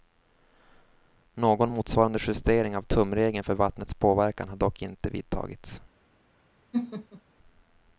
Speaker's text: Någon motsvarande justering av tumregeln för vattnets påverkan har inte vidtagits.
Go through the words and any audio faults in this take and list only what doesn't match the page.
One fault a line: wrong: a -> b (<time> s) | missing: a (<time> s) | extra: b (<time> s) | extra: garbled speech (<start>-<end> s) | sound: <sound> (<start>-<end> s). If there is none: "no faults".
extra: dock (4.6 s)
sound: laugh (6.7-7.2 s)